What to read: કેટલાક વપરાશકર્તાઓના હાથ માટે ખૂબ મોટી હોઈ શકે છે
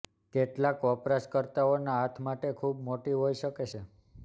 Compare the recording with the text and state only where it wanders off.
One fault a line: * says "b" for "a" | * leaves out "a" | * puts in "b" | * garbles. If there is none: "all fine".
all fine